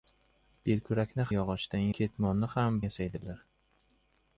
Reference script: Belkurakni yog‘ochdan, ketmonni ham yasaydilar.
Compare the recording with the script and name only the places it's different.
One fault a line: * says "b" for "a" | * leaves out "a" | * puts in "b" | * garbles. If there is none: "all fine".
all fine